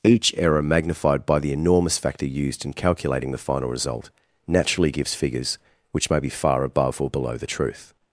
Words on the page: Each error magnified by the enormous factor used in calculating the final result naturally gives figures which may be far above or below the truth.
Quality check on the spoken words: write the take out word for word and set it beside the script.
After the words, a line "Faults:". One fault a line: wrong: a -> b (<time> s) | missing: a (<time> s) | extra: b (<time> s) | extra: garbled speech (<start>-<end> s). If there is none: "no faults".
Each error magnified by the enormous factor used in calculating the final result naturally gives figures which may be far above or below the truth.
Faults:
no faults